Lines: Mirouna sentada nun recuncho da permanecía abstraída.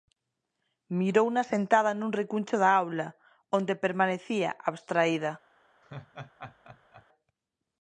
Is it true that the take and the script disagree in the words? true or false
true